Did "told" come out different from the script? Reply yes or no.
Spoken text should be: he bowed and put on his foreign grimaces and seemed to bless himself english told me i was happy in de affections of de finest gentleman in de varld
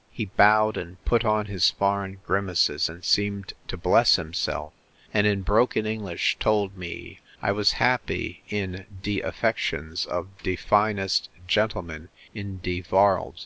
no